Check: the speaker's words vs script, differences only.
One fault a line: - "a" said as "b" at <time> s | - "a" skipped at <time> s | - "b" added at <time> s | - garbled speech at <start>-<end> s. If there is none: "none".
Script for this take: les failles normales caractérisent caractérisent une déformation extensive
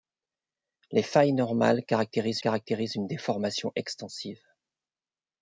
none